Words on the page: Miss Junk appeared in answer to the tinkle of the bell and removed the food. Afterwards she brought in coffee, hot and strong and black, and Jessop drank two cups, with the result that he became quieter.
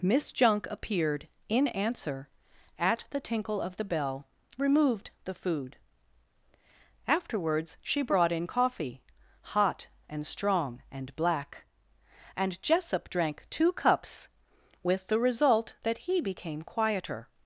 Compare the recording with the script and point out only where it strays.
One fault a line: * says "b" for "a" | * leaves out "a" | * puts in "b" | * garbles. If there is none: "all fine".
* says "at" for "to"
* leaves out "and"